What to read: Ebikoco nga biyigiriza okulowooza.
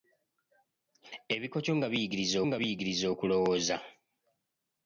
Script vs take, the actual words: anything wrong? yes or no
yes